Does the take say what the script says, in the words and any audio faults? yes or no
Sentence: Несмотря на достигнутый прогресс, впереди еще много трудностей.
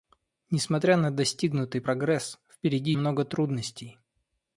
no